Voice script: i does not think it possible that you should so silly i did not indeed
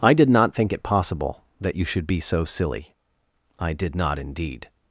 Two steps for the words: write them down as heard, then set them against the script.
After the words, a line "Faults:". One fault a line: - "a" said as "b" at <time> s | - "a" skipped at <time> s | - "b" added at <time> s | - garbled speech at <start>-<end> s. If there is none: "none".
i did not think it possible that you should be so silly i did not indeed
Faults:
- "does" said as "did" at 0.1 s
- "be" added at 2.1 s